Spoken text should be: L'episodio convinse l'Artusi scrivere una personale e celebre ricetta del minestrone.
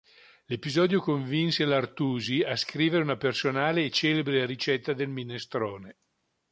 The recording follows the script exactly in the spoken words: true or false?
false